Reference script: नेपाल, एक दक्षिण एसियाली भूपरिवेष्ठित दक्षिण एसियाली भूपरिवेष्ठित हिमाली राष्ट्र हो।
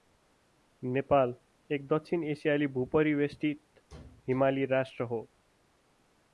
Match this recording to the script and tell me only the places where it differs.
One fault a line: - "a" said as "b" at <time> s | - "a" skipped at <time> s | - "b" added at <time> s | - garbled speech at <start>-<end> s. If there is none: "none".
- "दक्षिण एसियाली भूपरिवेष्ठित" skipped at 3.6 s